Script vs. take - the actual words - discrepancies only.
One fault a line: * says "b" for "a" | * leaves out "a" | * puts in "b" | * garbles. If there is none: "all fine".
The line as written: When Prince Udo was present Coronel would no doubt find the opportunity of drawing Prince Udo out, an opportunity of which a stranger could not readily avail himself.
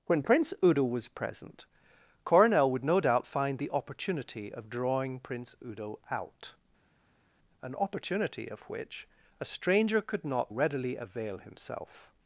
all fine